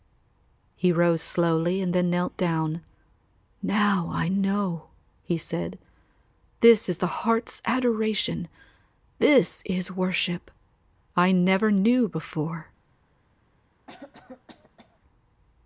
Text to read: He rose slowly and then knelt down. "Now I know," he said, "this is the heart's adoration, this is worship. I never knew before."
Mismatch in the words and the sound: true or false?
true